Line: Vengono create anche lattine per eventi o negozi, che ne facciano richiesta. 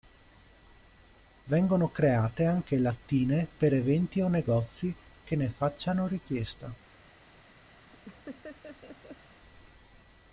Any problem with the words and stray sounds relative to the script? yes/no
yes